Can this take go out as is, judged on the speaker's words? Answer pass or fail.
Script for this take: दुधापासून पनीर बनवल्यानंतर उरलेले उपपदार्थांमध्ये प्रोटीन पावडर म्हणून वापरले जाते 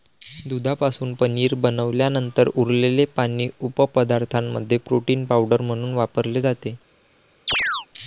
fail